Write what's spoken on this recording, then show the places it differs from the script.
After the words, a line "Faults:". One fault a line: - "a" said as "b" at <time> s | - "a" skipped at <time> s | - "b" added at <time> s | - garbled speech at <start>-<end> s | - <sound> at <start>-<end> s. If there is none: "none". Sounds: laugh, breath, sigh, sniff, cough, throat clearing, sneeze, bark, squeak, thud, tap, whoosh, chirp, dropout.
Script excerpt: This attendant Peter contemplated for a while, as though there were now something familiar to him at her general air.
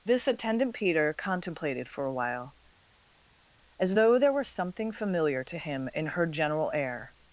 This attendant Peter contemplated for a while, as though there were something familiar to him in her general air.
Faults:
- "now" skipped at 4.5 s
- "at" said as "in" at 5.9 s